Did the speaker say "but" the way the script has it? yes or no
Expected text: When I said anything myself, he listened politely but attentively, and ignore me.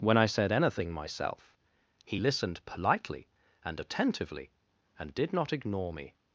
no